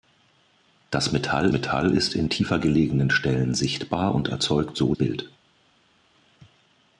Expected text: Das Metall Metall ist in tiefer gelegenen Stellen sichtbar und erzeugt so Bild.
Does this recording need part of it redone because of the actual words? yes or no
no